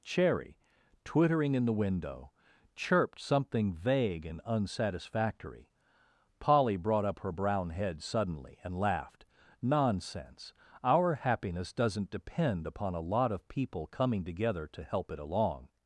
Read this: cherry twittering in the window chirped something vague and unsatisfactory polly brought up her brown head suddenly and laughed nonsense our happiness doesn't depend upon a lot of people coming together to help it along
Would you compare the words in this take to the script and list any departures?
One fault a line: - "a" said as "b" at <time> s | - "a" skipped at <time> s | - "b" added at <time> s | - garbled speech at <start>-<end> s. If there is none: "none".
none